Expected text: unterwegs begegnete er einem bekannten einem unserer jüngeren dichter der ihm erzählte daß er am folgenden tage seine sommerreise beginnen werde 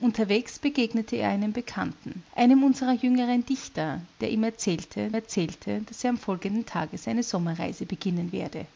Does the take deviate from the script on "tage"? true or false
false